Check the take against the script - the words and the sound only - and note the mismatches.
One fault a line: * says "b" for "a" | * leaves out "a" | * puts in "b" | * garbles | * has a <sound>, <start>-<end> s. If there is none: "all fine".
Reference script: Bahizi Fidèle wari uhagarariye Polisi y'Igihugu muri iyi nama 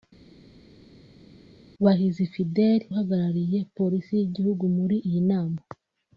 * leaves out "wari"